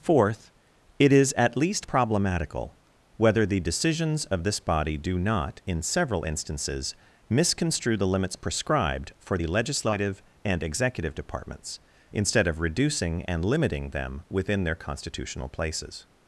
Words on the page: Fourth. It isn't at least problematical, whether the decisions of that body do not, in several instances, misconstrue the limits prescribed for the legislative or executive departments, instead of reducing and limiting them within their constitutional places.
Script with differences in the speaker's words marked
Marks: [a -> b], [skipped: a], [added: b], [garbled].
Fourth. It [isn't -> is] at least problematical, whether the decisions of [that -> this] body do not, in several instances, misconstrue the limits prescribed for the legislative [or -> and] executive departments, instead of reducing and limiting them within their constitutional places.